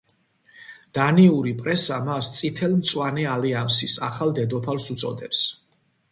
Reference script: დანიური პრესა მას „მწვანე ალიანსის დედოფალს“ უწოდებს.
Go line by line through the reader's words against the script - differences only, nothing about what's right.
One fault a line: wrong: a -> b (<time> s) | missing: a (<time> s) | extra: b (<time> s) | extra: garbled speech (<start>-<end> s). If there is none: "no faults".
extra: წითელ (2.4 s)
extra: ახალ (4.1 s)